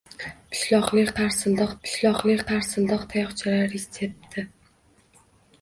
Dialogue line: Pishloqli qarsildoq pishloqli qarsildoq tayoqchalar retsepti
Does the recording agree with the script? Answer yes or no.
yes